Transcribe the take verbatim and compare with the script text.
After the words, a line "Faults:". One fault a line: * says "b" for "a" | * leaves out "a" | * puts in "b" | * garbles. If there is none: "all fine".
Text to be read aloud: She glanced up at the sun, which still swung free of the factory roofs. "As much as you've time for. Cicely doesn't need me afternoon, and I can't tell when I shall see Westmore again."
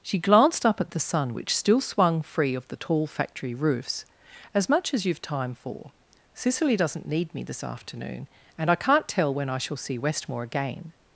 She glanced up at the sun, which still swung free of the tall factory roofs. "As much as you've time for. Cicely doesn't need me this afternoon, and I can't tell when I shall see Westmore again."
Faults:
* puts in "tall"
* puts in "this"